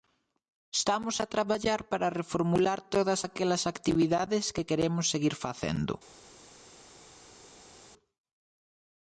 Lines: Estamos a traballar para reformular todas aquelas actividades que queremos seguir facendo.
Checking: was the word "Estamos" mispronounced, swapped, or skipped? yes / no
no